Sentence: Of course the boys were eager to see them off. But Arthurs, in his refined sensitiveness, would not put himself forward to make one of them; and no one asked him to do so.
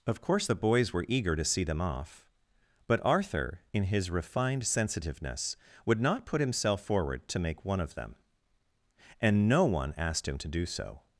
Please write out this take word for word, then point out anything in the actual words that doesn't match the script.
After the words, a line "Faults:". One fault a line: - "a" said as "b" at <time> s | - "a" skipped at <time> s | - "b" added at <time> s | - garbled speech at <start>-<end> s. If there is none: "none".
Of course the boys were eager to see them off. But Arthur, in his refined sensitiveness, would not put himself forward to make one of them; and no one asked him to do so.
Faults:
- "Arthurs" said as "Arthur" at 3.0 s